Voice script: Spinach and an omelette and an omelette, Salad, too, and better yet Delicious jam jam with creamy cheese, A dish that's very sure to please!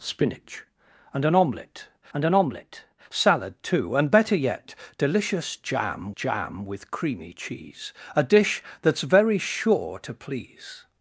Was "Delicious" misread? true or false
false